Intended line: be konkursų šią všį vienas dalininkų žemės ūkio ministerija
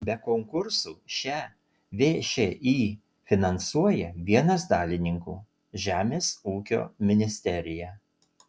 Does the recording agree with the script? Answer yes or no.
no